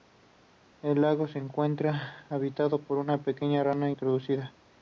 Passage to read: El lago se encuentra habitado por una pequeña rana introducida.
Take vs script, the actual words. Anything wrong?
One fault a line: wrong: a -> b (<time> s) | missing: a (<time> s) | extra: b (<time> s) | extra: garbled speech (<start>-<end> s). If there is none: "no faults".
no faults